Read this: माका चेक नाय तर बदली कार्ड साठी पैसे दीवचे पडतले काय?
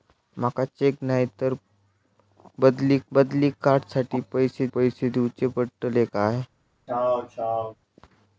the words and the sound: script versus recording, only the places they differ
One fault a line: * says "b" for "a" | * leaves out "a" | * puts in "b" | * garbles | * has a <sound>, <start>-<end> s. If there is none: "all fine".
* puts in "बदली"
* puts in "पैसे"
* has a throat clearing, 6.9-7.8 s